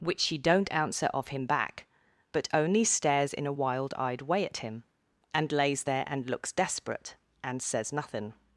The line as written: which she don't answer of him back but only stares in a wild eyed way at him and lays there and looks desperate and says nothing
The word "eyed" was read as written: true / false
true